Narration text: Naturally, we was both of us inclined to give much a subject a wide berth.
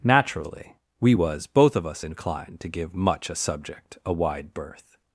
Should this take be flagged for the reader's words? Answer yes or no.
no